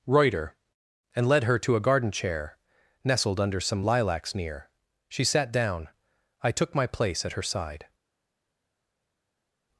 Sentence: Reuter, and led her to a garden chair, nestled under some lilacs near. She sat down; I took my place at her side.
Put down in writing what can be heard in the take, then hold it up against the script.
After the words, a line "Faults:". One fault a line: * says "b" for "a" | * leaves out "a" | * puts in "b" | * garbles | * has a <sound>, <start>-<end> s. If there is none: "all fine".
Reuter, and led her to a garden chair, nestled under some lilacs near. She sat down; I took my place at her side.
Faults:
all fine